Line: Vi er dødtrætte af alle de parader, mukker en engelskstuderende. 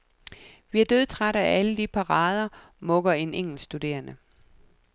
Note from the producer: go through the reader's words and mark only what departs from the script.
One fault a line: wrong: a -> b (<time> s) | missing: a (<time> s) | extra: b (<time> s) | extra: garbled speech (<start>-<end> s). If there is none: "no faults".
no faults